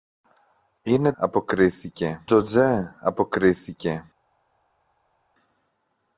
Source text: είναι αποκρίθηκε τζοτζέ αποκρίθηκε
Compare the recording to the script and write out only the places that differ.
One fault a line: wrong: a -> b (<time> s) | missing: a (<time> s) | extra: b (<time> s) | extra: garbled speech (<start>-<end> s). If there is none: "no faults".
no faults